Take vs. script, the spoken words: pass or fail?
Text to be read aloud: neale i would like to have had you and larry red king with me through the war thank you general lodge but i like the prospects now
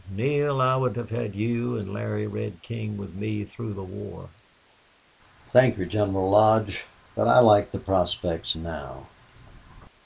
fail